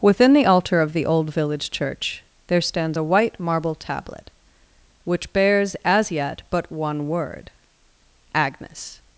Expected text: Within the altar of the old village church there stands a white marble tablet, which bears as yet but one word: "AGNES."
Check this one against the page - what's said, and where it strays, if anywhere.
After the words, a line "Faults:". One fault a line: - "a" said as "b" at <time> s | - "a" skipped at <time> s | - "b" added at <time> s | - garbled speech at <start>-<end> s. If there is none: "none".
Within the altar of the old village church there stands a white marble tablet, which bears as yet but one word: "AGNES."
Faults:
none